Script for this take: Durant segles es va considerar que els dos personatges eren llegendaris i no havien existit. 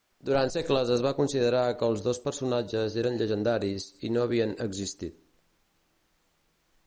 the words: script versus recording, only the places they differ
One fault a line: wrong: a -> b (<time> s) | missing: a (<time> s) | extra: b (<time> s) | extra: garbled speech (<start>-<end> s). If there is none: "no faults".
no faults